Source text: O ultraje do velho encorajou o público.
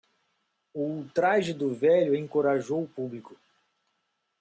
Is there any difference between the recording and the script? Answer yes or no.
no